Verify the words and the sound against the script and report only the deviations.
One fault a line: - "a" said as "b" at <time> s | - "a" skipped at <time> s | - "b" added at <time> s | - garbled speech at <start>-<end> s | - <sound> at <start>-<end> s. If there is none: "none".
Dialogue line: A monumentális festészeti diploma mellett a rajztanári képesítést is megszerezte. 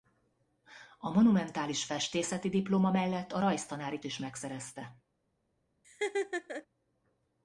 - "képesítést" skipped at 4.0 s
- laugh at 5.8-6.7 s